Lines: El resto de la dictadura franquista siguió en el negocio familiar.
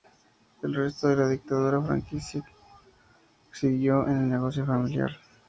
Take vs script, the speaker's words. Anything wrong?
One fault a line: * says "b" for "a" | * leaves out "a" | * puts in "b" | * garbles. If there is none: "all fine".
all fine